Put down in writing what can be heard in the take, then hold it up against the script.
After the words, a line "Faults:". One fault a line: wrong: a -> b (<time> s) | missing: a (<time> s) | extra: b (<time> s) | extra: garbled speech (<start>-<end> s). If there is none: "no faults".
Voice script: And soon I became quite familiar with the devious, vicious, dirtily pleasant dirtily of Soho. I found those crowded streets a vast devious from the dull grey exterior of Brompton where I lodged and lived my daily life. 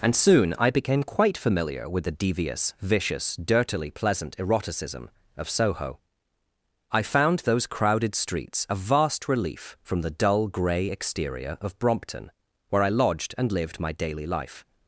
And soon I became quite familiar with the devious, vicious, dirtily pleasant eroticism of Soho. I found those crowded streets a vast relief from the dull grey exterior of Brompton where I lodged and lived my daily life.
Faults:
wrong: dirtily -> eroticism (4.4 s)
wrong: devious -> relief (9.3 s)